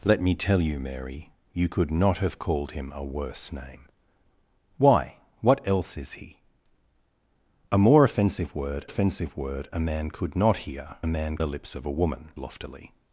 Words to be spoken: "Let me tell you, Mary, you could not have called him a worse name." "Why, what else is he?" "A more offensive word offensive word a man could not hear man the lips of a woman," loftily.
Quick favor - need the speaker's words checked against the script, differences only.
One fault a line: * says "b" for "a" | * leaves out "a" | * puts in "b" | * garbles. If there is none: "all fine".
all fine